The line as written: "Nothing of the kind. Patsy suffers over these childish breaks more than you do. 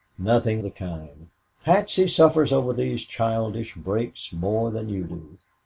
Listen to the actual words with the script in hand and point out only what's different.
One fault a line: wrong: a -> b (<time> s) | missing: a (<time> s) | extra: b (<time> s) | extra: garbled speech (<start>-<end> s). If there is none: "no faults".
missing: of (0.6 s)